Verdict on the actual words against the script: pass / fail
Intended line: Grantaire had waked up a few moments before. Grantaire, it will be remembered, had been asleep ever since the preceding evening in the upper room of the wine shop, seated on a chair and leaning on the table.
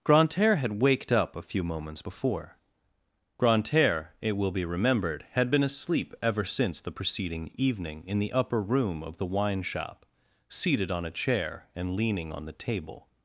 pass